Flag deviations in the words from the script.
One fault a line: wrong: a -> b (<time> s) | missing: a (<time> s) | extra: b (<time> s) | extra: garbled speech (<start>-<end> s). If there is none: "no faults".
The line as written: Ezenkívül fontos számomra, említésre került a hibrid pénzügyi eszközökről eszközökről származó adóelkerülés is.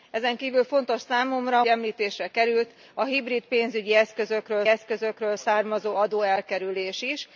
no faults